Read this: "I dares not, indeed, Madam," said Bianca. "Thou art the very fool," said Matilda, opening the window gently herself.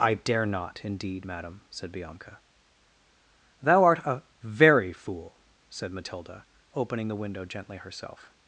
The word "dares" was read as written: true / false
false